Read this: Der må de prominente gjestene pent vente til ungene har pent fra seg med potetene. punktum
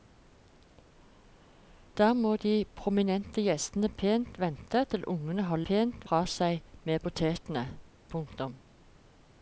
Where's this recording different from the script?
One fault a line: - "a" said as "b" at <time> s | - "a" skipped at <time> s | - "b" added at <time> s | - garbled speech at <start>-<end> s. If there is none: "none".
none